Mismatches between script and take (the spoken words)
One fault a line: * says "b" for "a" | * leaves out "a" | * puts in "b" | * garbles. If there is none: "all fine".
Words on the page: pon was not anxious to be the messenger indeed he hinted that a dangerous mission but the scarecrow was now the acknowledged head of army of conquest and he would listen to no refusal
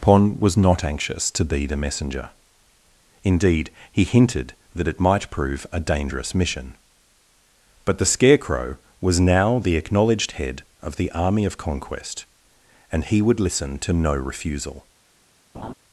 * puts in "it might prove"
* puts in "the"